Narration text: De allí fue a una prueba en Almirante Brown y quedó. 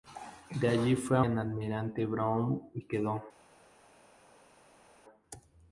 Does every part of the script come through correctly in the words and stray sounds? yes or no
no